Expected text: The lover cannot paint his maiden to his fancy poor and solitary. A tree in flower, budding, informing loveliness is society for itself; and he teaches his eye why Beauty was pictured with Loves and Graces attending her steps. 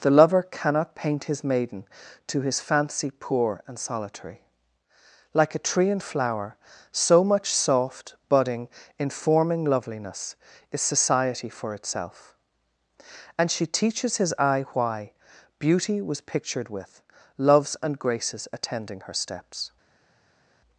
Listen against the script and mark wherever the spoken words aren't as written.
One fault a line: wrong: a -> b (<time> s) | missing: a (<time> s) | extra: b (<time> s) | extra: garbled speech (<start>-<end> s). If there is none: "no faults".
extra: Like (5.3 s)
extra: so much soft (6.9 s)
wrong: he -> she (13.5 s)